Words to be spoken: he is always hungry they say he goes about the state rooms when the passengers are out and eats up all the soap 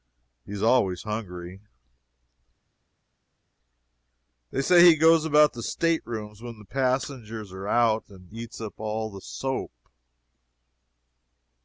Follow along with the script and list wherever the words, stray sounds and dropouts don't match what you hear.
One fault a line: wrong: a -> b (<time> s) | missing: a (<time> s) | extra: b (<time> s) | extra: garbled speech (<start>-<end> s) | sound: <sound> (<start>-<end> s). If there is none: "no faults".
no faults